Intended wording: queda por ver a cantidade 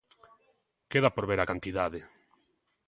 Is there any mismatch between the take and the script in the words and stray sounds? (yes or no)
no